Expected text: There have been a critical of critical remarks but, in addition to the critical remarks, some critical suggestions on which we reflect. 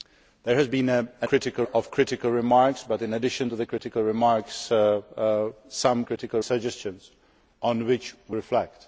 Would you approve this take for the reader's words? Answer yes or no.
yes